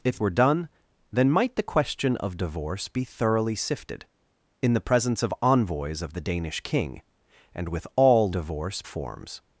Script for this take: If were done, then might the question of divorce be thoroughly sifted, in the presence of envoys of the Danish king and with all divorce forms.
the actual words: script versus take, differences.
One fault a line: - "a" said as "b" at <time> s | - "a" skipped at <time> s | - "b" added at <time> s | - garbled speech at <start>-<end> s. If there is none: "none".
none